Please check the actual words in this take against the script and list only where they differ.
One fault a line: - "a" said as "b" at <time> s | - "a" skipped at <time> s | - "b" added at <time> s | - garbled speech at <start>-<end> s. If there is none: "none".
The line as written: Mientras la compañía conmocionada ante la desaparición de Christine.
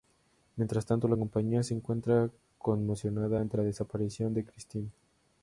- "tanto" added at 0.9 s
- "se encuentra" added at 1.6 s